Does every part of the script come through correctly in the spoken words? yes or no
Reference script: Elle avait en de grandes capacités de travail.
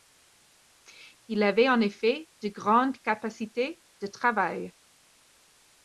no